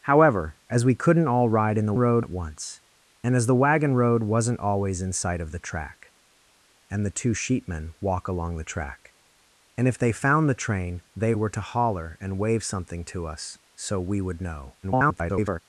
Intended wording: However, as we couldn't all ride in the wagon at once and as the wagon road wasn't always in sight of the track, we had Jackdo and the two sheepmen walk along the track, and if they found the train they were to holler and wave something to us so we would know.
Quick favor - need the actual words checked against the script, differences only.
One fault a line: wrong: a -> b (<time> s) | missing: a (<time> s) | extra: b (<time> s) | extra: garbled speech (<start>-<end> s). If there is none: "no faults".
wrong: wagon -> road (2.0 s)
missing: we had Jackdo (6.1 s)
extra: garbled speech (14.8-15.6 s)